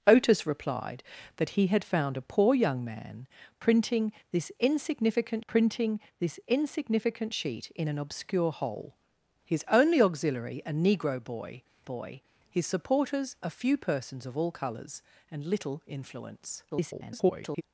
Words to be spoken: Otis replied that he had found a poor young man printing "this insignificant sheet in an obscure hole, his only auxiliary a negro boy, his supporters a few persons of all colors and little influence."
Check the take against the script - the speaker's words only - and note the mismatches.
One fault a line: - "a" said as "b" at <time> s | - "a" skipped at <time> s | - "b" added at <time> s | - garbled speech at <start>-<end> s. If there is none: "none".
- "printing this insignificant" added at 5.5 s
- "boy" added at 11.8 s
- garbled speech at 16.7-17.6 s